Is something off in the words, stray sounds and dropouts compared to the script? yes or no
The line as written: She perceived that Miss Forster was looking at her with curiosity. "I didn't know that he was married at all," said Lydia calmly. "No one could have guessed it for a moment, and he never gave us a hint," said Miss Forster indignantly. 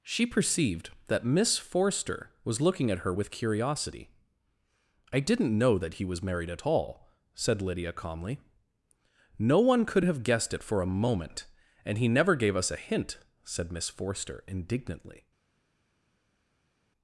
no